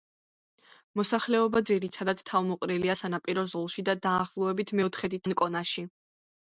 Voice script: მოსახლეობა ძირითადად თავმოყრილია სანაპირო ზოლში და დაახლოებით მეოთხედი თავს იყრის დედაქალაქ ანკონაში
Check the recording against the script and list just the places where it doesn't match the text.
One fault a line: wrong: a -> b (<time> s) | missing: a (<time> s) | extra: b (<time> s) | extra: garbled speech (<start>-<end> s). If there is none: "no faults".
missing: თავს იყრის დედაქალაქ (5.2 s)